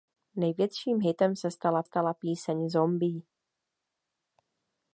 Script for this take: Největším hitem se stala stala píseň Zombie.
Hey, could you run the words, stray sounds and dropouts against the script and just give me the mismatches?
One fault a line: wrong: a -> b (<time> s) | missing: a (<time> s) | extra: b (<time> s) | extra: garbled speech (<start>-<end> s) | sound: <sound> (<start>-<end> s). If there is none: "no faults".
no faults